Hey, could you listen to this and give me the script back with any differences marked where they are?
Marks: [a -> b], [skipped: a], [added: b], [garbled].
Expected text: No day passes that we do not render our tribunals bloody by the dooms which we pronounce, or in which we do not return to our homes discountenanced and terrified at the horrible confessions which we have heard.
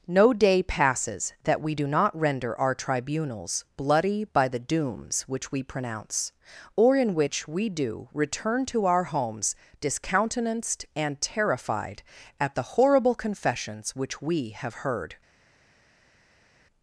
No day passes that we do not render our tribunals bloody by the dooms which we pronounce, or in which we do [skipped: not] return to our homes discountenanced and terrified at the horrible confessions which we have heard.